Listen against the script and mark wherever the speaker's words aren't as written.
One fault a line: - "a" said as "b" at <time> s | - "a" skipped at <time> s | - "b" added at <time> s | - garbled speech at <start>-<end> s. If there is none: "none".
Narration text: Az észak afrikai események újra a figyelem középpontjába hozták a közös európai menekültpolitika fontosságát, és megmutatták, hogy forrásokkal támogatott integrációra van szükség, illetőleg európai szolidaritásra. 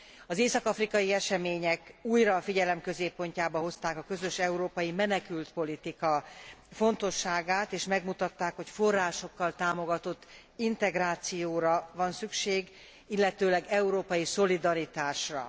none